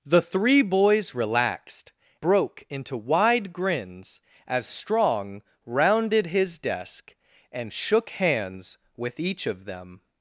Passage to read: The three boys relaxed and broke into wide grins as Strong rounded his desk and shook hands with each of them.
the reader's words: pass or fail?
fail